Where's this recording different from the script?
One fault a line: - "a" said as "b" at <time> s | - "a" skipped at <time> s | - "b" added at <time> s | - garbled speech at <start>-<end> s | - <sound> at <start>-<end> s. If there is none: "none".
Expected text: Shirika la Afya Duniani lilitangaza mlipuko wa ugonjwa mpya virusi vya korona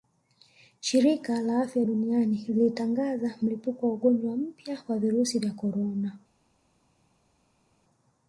- "wa" added at 4.9 s